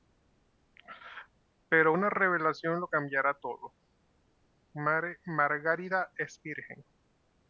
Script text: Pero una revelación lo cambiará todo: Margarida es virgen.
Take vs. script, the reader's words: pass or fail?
pass